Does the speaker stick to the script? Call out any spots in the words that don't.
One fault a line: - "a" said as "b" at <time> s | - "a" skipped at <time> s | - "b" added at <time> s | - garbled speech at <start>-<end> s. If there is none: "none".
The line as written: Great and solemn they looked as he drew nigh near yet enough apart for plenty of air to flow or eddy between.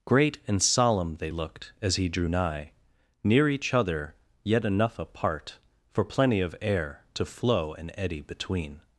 - "each other" added at 3.5 s
- "or" said as "and" at 7.7 s